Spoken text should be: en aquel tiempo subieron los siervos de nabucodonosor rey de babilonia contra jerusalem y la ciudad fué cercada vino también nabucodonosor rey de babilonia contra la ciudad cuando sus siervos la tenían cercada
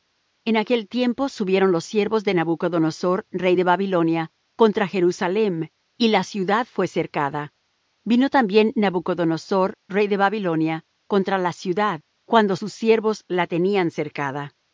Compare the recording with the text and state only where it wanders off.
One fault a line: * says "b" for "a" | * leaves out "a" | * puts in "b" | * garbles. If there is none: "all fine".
all fine